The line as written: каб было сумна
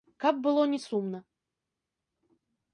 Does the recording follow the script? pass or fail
fail